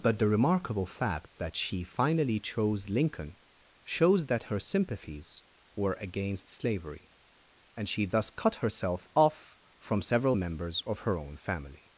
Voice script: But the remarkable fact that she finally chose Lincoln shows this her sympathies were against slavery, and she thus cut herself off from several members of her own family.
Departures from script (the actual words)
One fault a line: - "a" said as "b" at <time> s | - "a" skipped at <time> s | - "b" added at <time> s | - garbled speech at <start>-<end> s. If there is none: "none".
- "this" said as "that" at 4.3 s